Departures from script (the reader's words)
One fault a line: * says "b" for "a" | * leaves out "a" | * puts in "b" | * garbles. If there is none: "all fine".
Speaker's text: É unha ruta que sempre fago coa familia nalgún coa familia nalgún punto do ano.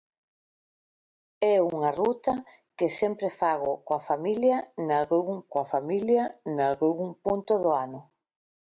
all fine